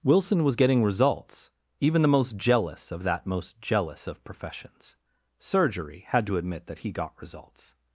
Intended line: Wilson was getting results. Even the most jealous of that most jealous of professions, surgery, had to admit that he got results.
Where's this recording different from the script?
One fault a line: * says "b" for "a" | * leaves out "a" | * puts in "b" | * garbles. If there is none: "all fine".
all fine